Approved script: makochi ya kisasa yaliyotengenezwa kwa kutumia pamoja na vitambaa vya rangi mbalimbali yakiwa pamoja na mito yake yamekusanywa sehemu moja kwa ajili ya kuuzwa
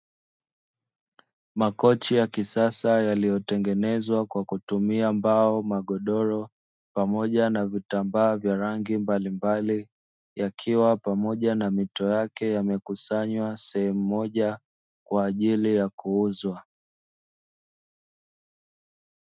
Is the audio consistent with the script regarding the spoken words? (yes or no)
no